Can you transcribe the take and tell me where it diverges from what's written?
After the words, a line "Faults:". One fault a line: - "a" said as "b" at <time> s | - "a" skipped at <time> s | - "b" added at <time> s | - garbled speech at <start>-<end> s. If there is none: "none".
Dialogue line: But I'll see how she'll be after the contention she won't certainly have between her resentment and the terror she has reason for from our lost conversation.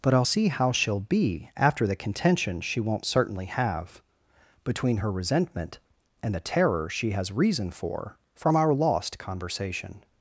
But I'll see how she'll be after the contention she won't certainly have between her resentment and the terror she has reason for from our lost conversation.
Faults:
none